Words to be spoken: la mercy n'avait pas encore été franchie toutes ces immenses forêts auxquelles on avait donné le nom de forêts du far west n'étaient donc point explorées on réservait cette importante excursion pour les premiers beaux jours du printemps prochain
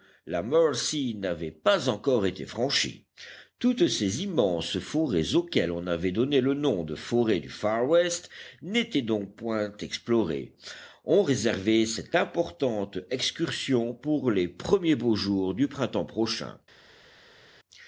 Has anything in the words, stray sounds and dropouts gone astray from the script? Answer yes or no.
no